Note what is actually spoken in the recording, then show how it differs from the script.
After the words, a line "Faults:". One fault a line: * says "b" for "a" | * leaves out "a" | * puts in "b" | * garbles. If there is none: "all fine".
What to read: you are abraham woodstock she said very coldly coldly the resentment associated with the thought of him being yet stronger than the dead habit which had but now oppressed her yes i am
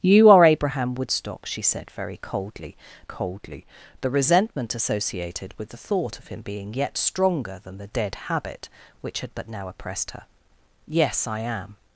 you are abraham woodstock she said very coldly coldly the resentment associated with the thought of him being yet stronger than the dead habit which had but now oppressed her yes i am
Faults:
all fine